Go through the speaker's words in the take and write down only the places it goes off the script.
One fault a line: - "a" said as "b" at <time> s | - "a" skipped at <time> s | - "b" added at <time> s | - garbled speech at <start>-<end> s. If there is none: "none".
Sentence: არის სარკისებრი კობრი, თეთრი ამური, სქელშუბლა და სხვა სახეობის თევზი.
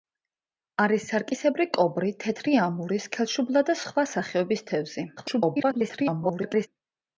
- garbled speech at 5.2-6.7 s